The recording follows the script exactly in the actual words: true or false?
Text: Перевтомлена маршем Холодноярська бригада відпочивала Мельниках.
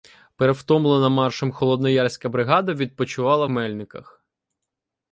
true